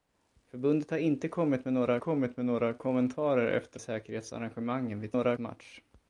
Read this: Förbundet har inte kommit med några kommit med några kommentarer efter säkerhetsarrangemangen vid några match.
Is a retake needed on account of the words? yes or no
no